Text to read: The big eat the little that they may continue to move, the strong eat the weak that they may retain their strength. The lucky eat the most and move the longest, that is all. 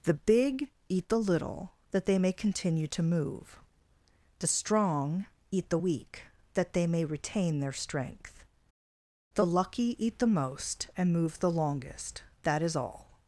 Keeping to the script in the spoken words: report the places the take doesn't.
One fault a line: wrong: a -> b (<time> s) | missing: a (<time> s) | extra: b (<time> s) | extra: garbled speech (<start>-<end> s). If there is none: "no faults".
no faults